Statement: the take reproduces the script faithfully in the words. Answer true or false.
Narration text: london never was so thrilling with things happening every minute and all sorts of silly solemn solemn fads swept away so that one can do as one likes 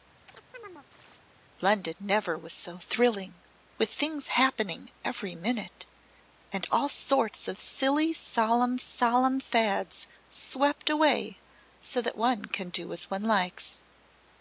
true